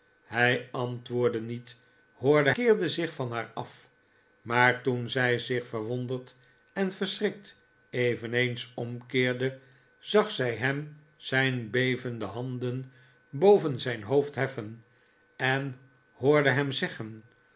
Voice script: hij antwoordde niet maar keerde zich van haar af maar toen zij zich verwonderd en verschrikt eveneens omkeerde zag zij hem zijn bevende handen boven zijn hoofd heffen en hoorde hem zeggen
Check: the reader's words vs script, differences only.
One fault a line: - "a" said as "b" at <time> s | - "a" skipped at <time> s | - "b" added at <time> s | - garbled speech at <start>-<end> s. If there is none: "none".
- "maar" said as "hoorde" at 2.1 s